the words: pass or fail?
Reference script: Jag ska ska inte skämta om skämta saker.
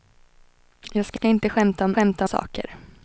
pass